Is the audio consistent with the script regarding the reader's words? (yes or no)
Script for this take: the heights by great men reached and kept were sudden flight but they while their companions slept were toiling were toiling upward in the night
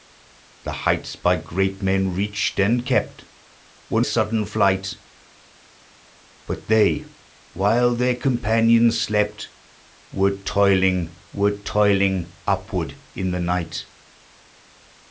yes